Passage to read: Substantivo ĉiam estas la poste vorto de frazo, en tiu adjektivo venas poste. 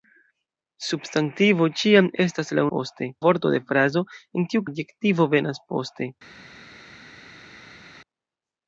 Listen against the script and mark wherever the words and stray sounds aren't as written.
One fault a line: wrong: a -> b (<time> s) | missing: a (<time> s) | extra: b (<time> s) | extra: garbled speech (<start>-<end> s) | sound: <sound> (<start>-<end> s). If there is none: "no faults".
no faults